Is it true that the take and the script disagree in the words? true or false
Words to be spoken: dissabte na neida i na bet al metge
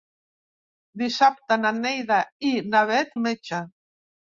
false